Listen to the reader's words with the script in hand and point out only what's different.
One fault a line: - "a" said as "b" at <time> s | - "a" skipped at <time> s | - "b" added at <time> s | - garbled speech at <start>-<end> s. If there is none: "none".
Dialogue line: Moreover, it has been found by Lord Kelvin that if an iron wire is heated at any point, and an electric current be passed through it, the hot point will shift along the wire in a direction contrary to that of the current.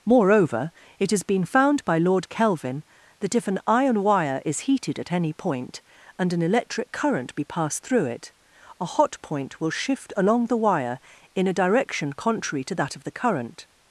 - "the" said as "a" at 8.8 s